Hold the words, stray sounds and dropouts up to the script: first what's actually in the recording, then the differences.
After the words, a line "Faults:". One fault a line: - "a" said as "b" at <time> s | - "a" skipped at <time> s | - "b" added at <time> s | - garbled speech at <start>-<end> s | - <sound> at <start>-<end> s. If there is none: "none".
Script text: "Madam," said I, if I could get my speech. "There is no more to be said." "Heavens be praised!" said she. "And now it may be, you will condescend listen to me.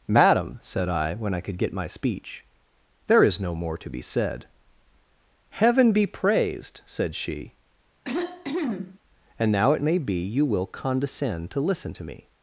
"Madam," said I, when I could get my speech. "There is no more to be said." "Heaven be praised!" said she. "And now it may be, you will condescend to listen to me.
Faults:
- "if" said as "when" at 1.1 s
- "Heavens" said as "Heaven" at 5.5 s
- cough at 8.0-9.0 s
- "to" added at 11.5 s